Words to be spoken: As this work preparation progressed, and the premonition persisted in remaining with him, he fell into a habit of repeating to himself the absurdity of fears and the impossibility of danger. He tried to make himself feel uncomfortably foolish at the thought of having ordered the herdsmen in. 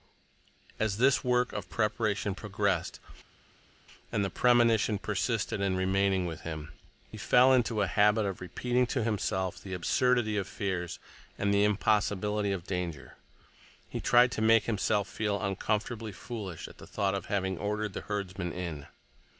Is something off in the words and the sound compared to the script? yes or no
yes